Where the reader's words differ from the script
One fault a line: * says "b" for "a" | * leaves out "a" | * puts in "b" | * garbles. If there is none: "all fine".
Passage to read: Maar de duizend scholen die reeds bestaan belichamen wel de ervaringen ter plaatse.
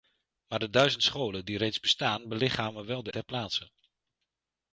* leaves out "ervaringen"